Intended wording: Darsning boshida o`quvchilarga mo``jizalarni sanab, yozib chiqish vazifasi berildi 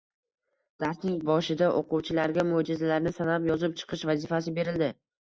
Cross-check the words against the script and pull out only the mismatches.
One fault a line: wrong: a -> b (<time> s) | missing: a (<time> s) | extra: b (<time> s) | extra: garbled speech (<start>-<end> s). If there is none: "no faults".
no faults